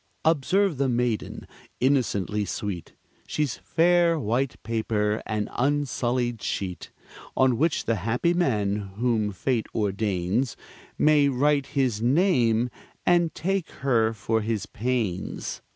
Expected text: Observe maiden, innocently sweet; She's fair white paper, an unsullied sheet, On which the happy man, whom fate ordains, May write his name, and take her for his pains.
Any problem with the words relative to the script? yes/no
yes